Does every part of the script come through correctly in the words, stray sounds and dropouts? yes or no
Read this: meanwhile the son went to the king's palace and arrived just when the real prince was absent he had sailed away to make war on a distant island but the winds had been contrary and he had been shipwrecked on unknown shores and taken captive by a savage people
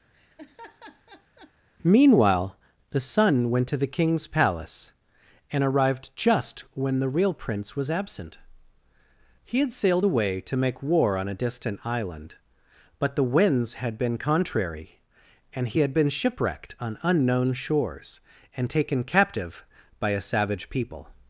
no